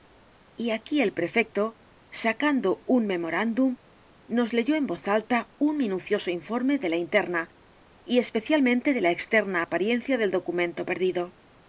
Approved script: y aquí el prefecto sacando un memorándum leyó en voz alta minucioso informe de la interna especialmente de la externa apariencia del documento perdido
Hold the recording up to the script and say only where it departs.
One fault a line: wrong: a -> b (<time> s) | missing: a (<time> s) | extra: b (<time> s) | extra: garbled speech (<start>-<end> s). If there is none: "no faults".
extra: nos (4.3 s)
extra: un (5.6 s)
extra: y (8.1 s)